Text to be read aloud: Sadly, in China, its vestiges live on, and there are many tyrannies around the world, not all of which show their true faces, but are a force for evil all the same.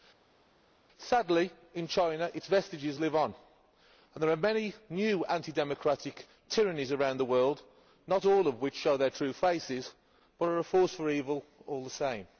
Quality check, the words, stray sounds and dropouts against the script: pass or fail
fail